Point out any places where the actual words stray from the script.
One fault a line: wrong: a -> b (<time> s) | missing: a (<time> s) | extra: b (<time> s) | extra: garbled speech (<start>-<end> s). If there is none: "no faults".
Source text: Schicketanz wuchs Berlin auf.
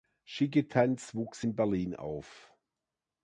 extra: in (1.4 s)